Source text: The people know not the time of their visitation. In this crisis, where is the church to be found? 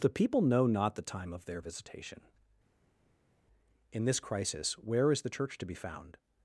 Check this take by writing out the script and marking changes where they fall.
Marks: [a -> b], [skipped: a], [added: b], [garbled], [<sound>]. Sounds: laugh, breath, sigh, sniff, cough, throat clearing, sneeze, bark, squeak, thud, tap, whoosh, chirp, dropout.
The people know not the time of their visitation. In this crisis, where is the church to be found?